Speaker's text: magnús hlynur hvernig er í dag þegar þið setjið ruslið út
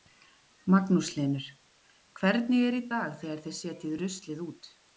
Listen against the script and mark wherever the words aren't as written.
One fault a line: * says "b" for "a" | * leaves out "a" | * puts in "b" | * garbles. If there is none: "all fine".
all fine